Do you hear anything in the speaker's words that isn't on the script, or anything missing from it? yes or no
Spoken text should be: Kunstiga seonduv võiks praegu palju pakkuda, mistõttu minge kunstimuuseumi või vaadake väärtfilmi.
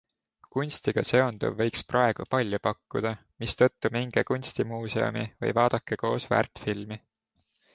yes